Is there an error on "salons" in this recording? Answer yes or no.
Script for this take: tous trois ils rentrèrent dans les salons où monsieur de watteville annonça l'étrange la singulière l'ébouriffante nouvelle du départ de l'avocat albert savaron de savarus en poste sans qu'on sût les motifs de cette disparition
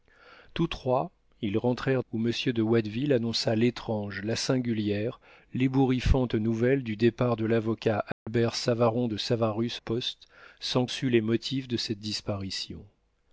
yes